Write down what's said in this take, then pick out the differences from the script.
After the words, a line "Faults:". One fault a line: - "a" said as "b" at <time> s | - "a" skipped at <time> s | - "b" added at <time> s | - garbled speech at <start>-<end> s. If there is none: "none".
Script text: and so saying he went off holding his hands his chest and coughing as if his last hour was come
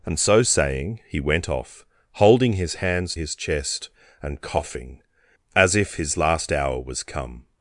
and so saying he went off holding his hands his chest and coughing as if his last hour was come
Faults:
none